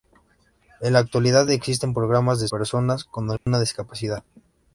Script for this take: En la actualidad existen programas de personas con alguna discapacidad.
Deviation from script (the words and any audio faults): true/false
true